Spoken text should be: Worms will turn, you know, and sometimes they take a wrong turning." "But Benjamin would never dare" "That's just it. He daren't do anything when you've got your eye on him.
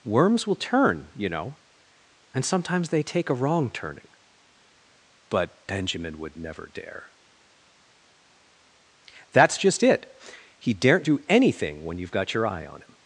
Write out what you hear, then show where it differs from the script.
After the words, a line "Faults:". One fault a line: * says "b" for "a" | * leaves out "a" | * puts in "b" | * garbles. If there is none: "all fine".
Worms will turn, you know, and sometimes they take a wrong turning." "But Benjamin would never dare" "That's just it. He daren't do anything when you've got your eye on him.
Faults:
all fine